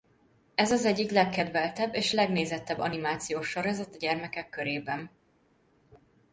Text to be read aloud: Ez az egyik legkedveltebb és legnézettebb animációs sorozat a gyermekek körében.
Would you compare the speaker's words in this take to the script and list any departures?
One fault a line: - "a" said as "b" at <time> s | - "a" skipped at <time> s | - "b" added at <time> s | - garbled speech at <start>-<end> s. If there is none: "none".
none